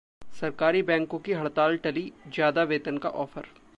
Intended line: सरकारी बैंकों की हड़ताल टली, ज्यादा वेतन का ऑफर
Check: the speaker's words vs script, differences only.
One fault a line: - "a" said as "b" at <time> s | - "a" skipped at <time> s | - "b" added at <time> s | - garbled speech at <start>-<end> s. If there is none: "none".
none